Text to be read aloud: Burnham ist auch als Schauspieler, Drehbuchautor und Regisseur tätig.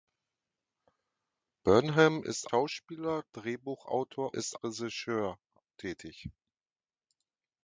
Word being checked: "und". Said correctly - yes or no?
no